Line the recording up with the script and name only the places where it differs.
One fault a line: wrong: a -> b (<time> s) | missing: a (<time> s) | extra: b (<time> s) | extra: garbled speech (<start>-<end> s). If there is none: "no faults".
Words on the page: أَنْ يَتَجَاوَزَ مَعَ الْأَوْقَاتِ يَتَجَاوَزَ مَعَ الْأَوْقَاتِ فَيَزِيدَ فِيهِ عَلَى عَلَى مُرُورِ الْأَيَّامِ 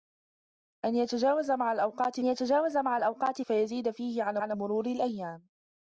no faults